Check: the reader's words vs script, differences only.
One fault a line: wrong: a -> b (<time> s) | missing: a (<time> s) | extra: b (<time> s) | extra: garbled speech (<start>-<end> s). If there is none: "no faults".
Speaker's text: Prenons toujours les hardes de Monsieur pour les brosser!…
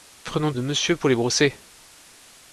missing: toujours les hardes (0.6 s)